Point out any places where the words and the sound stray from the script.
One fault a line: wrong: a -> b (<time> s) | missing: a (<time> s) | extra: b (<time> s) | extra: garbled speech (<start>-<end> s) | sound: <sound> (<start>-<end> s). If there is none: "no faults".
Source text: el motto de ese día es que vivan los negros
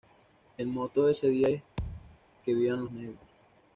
sound: thud (1.8-2.2 s)